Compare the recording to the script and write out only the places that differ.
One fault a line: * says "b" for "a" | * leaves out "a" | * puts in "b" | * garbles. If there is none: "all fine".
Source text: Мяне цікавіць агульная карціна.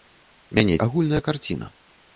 * leaves out "цікавіць"